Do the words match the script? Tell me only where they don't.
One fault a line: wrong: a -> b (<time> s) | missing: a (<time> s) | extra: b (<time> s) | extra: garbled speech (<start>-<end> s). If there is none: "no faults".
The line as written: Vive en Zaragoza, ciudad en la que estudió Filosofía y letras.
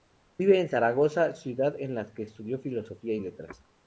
no faults